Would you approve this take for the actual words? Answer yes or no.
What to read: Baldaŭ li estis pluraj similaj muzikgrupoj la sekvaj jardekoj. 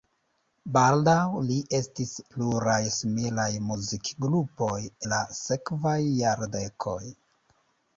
yes